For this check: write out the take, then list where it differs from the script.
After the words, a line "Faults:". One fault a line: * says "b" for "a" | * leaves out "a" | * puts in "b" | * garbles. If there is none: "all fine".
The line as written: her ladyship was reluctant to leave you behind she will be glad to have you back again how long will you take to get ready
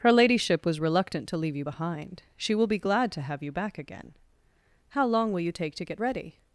her ladyship was reluctant to leave you behind she will be glad to have you back again how long will you take to get ready
Faults:
all fine